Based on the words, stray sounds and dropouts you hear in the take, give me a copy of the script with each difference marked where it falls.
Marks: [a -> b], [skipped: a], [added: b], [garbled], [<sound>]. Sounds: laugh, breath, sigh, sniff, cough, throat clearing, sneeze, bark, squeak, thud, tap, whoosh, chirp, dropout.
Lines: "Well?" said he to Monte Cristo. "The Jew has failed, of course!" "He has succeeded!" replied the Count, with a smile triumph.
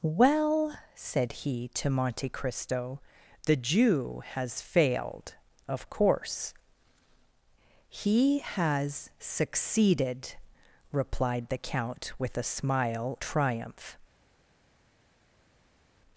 "Well?" said he to Monte Cristo. "The Jew has failed, of course!" "He has succeeded!" replied the Count, with a smile triumph.